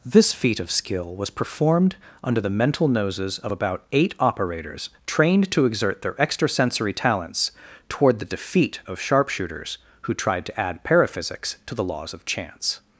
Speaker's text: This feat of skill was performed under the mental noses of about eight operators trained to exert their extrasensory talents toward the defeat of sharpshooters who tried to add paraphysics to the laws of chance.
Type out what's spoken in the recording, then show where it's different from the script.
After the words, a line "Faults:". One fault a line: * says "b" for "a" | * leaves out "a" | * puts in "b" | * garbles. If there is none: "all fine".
This feat of skill was performed under the mental noses of about eight operators trained to exert their extrasensory talents toward the defeat of sharpshooters who tried to add paraphysics to the laws of chance.
Faults:
all fine